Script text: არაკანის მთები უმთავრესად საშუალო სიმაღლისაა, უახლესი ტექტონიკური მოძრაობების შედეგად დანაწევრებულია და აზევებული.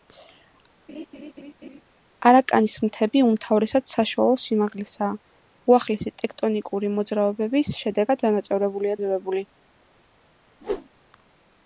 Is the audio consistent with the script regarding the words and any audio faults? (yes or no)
no